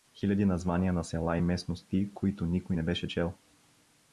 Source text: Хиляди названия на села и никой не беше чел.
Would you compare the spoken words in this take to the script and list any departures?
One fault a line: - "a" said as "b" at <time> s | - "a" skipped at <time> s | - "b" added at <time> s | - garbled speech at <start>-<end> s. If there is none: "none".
- "местности които" added at 1.4 s